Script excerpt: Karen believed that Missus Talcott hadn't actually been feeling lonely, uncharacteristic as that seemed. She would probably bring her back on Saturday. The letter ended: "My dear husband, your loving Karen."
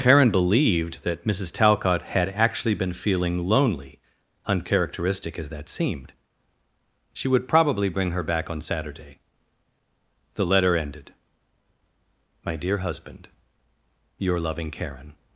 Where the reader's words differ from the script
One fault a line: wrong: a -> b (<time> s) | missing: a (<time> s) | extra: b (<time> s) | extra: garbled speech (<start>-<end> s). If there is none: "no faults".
wrong: hadn't -> had (2.0 s)